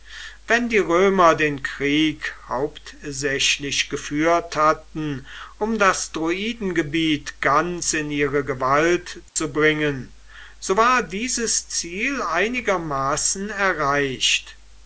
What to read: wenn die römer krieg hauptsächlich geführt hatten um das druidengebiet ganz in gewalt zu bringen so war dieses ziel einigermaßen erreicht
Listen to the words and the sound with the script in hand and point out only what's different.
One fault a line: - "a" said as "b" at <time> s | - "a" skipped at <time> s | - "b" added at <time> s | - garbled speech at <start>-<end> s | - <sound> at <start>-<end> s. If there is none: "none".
- "den" added at 1.3 s
- "ihre" added at 8.1 s
- dropout at 9.3-9.4 s